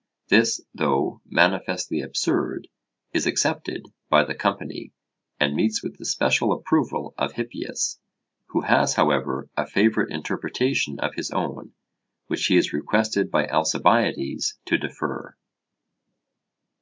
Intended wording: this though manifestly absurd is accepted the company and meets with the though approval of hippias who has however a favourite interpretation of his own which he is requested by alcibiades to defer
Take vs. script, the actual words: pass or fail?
fail